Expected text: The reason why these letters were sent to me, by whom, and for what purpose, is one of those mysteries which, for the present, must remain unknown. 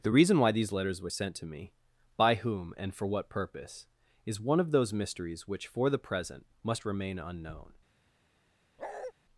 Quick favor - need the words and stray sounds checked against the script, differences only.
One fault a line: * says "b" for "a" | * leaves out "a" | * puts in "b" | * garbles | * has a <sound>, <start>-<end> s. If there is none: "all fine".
* has a bark, 8.8-9.1 s